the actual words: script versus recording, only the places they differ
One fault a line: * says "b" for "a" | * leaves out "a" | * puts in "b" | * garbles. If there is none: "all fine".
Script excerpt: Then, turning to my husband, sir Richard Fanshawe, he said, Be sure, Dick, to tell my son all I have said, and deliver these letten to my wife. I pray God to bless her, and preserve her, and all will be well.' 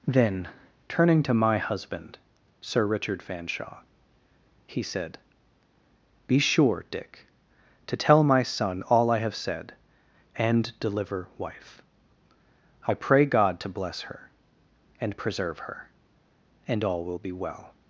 * leaves out "these letten to my"